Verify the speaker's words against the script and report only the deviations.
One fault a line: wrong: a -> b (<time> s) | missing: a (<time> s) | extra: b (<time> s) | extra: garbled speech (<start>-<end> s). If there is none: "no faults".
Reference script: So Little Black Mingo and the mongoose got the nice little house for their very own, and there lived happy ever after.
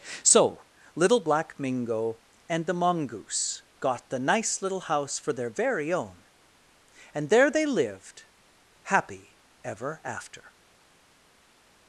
extra: they (7.5 s)